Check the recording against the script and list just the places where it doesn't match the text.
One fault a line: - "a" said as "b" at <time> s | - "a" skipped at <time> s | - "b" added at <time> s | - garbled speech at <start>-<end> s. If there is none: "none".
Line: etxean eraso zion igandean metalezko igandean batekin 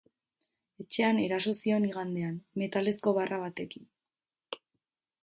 - "igandean" said as "barra" at 3.2 s